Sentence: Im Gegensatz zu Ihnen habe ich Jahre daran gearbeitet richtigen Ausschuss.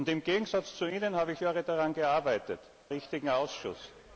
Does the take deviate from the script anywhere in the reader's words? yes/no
no